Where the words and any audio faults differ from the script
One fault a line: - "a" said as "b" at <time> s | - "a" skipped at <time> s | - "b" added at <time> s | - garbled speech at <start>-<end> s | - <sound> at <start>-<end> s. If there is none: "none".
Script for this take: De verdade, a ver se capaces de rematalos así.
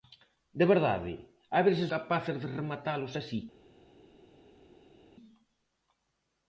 none